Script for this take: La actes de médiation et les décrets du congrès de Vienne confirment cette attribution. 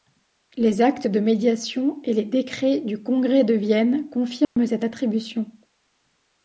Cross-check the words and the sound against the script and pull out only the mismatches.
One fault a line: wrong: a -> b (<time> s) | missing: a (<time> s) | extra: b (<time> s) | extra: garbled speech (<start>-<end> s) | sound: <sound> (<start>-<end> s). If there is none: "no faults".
wrong: La -> Les (0.6 s)
sound: dropout (4.4-4.6 s)